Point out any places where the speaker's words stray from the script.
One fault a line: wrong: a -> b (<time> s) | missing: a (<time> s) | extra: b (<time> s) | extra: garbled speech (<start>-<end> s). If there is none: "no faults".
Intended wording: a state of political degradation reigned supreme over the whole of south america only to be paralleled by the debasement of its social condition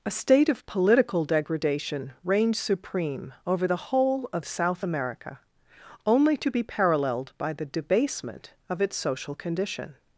no faults